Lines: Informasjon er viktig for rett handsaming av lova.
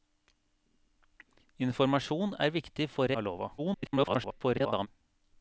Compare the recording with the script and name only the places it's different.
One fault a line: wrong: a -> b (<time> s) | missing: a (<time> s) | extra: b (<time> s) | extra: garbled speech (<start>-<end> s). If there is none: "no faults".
missing: rett handsaming (3.1 s)
extra: garbled speech (3.6-4.9 s)